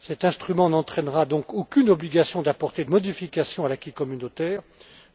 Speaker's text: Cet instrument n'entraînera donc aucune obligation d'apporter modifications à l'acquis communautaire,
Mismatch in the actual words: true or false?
false